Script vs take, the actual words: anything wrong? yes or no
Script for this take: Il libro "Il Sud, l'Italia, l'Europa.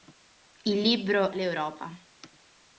yes